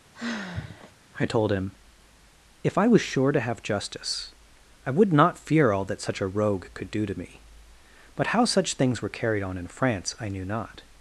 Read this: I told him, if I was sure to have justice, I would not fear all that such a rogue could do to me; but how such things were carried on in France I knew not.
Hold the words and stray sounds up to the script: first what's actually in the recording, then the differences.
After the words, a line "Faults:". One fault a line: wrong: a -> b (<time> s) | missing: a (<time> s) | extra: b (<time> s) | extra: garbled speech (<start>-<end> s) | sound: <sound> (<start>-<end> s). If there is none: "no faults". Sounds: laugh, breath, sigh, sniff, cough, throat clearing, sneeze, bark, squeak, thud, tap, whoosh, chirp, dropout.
I told him, if I was sure to have justice, I would not fear all that such a rogue could do to me; but how such things were carried on in France I knew not.
Faults:
sound: sigh (0.1-0.9 s)